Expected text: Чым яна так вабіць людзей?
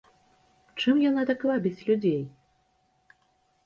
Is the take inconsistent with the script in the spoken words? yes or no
no